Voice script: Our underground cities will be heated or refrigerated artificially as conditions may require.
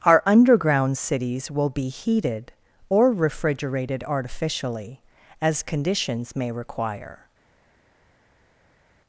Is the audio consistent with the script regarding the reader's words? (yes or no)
yes